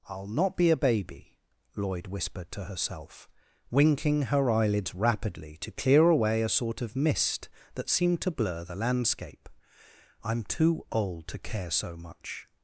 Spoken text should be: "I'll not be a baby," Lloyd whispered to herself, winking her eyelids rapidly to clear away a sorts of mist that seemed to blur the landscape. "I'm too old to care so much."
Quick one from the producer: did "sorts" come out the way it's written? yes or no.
no